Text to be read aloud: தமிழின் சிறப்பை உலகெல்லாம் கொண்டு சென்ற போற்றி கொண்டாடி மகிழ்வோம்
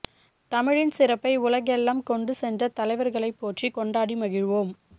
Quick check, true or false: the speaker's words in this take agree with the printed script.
false